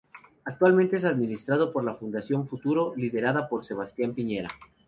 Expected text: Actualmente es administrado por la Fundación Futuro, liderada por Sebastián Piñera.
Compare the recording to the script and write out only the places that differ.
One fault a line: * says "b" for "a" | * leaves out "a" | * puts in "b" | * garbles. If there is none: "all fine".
all fine